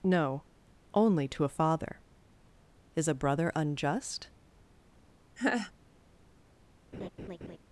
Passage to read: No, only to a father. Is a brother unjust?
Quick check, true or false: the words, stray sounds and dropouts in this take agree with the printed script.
false